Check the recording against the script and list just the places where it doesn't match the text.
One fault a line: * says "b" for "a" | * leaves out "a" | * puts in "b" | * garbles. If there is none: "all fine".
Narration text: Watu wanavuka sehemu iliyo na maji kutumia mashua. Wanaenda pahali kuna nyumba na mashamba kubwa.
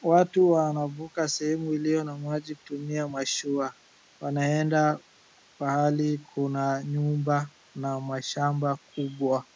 all fine